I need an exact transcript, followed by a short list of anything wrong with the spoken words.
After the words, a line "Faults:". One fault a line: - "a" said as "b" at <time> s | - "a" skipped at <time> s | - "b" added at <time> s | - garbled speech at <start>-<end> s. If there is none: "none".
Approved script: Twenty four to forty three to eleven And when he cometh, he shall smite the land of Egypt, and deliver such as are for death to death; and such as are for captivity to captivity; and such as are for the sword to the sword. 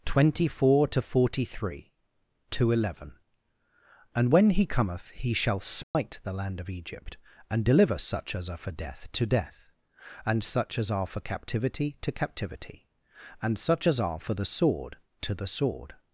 Twenty four to forty three to eleven And when he cometh, he shall smite the land of Egypt, and deliver such as are for death to death; and such as are for captivity to captivity; and such as are for the sword to the sword.
Faults:
none